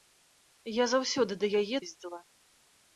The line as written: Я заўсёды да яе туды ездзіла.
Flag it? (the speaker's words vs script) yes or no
yes